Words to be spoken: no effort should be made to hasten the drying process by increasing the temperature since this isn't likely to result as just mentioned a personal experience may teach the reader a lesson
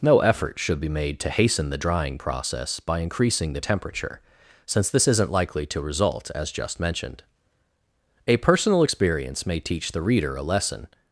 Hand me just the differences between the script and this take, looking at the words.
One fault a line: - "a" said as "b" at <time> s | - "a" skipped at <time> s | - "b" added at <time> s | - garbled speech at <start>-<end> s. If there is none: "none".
none